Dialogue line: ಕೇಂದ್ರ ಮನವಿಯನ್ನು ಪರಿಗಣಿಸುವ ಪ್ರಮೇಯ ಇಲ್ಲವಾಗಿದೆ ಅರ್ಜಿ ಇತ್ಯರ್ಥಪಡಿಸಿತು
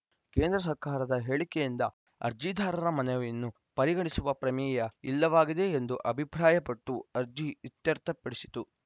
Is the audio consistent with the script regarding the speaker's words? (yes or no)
no